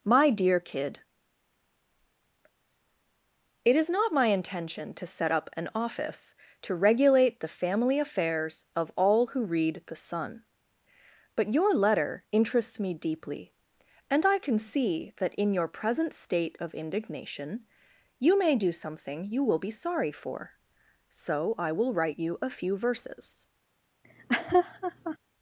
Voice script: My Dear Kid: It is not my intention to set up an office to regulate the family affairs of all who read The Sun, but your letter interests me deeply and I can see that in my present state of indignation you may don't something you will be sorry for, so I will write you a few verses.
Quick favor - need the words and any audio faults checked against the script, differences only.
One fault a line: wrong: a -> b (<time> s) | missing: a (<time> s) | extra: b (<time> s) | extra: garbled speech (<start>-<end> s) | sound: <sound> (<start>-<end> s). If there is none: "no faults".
wrong: my -> your (15.5 s)
wrong: don't -> do (18.5 s)
sound: laugh (24.0-25.2 s)